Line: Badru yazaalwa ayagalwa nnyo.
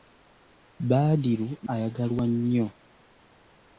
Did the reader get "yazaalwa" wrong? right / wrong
wrong